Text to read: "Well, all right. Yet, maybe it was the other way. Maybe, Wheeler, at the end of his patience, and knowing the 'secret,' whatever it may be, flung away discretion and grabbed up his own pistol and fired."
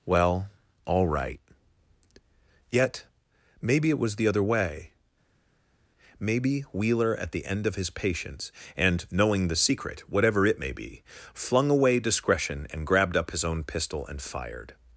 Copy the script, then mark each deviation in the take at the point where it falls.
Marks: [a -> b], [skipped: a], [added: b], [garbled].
"Well, all right. Yet, maybe it was the other way. Maybe, Wheeler, at the end of his patience, and knowing the 'secret,' whatever it may be, flung away discretion and grabbed up his own pistol and fired."